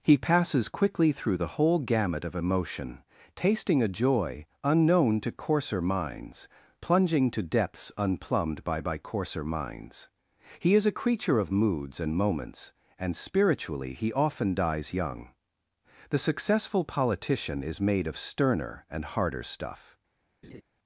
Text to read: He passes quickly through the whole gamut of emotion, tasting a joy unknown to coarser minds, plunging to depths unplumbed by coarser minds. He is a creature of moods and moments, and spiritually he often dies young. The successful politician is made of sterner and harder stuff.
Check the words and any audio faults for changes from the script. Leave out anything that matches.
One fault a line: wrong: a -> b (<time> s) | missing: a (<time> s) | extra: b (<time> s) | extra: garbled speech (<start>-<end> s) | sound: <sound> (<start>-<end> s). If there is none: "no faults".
extra: by (8.8 s)
sound: laugh (20.4-20.6 s)